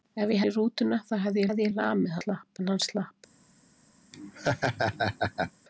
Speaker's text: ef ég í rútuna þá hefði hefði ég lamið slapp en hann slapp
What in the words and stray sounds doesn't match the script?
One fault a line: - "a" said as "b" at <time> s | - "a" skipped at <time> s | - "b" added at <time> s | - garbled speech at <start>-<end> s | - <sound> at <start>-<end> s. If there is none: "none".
- laugh at 4.1-5.5 s